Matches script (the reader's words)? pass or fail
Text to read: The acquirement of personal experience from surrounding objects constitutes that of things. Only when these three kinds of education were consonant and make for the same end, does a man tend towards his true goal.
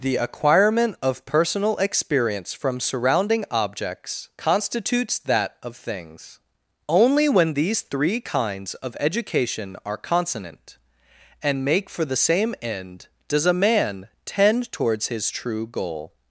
fail